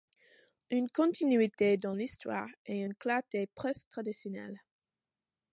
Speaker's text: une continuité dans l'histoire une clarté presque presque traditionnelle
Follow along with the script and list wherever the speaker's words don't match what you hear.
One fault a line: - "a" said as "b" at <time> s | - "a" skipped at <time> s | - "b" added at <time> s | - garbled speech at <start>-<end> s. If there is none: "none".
- "et" added at 2.6 s
- "presque" skipped at 3.9 s